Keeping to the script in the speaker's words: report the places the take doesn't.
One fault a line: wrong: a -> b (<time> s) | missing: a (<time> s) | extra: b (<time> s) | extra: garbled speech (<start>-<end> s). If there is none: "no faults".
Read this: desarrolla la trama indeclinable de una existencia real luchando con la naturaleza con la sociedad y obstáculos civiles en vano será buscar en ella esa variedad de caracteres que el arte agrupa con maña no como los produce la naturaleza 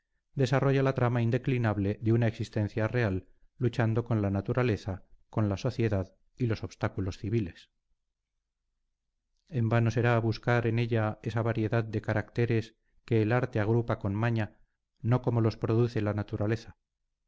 extra: los (6.5 s)